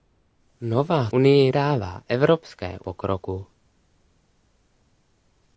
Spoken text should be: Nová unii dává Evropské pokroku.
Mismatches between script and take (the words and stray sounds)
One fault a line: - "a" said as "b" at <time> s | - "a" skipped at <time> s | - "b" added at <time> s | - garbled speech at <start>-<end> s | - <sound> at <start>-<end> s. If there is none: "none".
none